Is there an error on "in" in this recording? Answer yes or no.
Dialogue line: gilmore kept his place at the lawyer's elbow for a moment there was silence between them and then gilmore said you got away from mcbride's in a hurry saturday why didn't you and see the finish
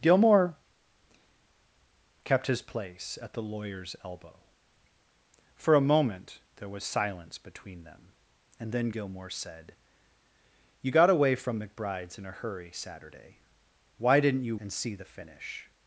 no